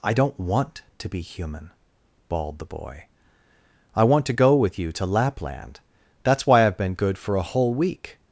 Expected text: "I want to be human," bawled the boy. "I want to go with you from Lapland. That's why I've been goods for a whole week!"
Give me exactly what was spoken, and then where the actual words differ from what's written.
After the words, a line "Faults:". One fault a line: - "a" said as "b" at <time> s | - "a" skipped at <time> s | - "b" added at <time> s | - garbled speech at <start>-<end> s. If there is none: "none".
"I don't want to be human," bawled the boy. "I want to go with you to Lapland. That's why I've been good for a whole week!"
Faults:
- "don't" added at 0.1 s
- "from" said as "to" at 4.9 s
- "goods" said as "good" at 6.9 s